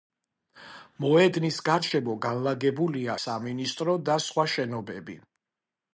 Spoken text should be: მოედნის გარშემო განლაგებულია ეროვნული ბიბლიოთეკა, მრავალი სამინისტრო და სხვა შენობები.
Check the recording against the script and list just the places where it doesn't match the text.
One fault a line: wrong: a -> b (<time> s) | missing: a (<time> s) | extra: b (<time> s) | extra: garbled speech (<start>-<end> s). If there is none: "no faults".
missing: ეროვნული ბიბლიოთეკა მრავალი (3.2 s)